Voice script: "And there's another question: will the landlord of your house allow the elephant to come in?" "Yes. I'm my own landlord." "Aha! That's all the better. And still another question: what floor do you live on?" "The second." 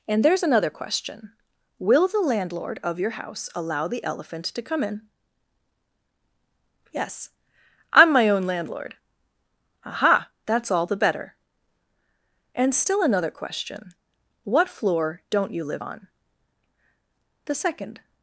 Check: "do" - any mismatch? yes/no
yes